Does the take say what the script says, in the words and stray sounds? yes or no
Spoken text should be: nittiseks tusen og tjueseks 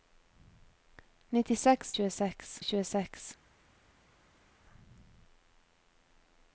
no